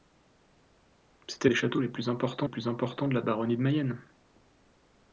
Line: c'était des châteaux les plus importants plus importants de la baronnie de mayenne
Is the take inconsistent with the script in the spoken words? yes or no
no